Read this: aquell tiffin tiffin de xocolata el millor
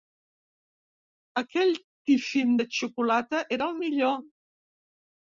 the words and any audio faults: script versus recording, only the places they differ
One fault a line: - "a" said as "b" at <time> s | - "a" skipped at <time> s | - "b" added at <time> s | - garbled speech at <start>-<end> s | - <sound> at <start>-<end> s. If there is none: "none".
- "tiffin" skipped at 2.5 s
- "era" added at 3.6 s